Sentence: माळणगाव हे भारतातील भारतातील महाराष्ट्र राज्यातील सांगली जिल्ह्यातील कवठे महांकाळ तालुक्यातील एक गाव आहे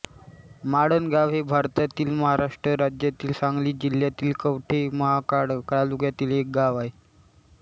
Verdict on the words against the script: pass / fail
fail